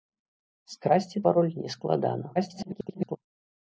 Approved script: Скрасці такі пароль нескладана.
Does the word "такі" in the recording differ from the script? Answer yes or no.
yes